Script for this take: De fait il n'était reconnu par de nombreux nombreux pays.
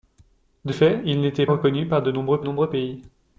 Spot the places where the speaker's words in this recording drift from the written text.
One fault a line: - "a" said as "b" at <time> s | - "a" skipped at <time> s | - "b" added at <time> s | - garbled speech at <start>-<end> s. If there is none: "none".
none